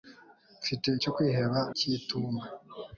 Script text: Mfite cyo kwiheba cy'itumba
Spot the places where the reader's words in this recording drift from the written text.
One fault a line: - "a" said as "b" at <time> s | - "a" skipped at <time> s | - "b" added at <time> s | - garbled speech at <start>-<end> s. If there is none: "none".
none